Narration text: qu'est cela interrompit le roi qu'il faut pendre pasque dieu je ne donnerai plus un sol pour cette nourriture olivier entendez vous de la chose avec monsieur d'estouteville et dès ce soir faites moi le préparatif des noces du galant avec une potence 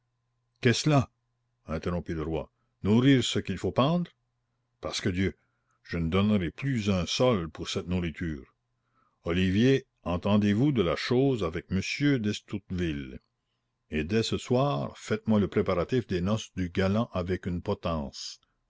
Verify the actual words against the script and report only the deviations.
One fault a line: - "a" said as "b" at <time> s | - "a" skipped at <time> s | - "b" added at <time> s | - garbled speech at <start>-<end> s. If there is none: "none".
- "nourrir ce" added at 2.8 s